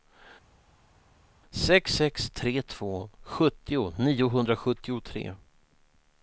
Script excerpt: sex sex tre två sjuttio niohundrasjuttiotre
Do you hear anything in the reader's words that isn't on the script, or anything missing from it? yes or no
no